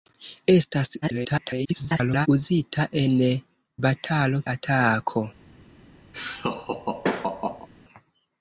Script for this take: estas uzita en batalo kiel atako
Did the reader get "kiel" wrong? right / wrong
wrong